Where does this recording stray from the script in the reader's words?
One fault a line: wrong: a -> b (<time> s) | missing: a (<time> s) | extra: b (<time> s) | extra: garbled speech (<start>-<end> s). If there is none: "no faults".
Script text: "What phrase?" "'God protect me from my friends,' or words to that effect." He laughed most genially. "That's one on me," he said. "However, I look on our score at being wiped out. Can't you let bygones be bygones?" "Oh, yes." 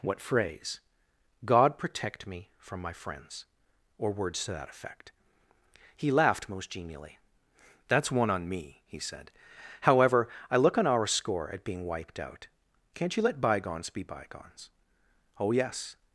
no faults